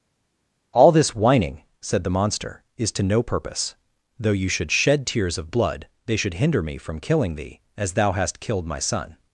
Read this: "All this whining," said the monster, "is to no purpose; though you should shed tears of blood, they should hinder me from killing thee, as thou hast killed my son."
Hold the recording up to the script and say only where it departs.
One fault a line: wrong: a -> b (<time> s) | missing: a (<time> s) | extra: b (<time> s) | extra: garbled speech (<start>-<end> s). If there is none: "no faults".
no faults